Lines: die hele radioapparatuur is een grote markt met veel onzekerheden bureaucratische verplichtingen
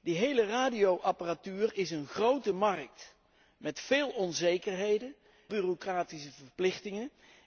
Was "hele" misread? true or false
false